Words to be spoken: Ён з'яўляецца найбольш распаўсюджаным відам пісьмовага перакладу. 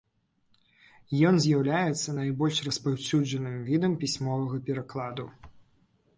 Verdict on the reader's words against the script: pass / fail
pass